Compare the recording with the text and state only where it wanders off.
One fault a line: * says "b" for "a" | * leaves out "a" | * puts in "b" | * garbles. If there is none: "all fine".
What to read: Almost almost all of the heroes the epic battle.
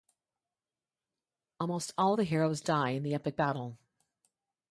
* leaves out "almost"
* puts in "die in"